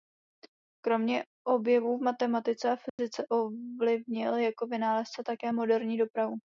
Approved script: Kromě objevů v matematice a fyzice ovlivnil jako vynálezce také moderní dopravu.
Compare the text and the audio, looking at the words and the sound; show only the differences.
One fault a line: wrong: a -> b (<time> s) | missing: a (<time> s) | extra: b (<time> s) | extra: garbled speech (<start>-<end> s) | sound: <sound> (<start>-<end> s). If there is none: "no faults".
sound: dropout (2.9-3.0 s)